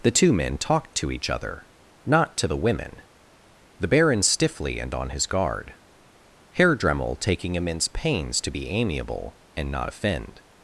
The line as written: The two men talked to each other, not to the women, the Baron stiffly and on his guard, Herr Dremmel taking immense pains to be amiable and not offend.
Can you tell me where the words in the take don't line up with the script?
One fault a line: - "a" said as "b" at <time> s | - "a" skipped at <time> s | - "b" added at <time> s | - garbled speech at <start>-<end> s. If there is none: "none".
none